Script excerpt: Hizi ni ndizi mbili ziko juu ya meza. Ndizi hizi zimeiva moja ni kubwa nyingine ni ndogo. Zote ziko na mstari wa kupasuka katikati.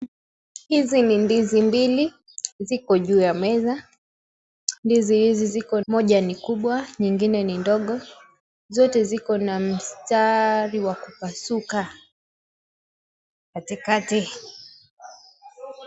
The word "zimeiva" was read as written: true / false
false